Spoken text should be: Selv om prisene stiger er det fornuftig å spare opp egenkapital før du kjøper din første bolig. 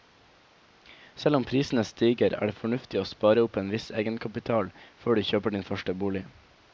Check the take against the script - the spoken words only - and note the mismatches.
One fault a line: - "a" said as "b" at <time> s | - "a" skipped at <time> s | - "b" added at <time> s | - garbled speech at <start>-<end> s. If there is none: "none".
- "en viss" added at 3.6 s